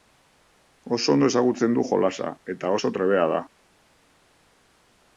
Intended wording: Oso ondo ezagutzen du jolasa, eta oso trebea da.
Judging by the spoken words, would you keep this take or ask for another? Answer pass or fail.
pass